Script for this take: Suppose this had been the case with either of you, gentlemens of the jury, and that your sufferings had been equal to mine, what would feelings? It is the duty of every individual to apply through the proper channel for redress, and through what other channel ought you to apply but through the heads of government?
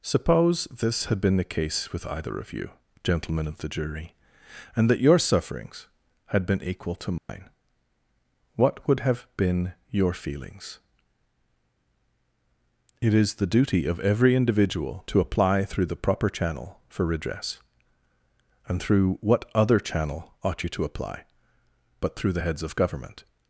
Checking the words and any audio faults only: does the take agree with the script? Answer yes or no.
no